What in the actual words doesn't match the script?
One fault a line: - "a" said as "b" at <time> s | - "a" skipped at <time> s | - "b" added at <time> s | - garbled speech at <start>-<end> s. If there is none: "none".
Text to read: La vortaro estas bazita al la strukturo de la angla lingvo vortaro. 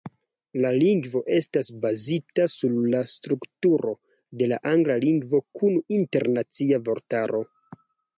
- "vortaro" said as "lingvo" at 0.8 s
- "al" said as "sur" at 2.5 s
- "kun internacia" added at 5.6 s